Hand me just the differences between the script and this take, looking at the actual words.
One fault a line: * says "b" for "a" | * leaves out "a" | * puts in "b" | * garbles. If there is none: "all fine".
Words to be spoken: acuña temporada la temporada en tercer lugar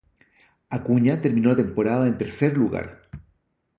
* says "terminó" for "temporada"